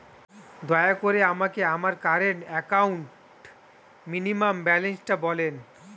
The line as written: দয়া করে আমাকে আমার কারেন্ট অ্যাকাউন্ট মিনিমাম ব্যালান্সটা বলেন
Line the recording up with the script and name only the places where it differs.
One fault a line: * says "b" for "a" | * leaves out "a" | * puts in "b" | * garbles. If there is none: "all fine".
all fine